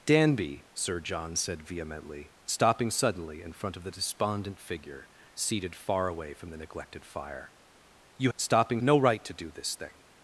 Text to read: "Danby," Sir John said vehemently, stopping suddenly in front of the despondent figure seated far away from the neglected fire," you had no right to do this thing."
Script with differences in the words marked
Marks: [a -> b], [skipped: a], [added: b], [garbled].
"Danby," Sir John said vehemently, stopping suddenly in front of the despondent figure seated far away from the neglected fire," you [had -> stopping] no right to do this thing."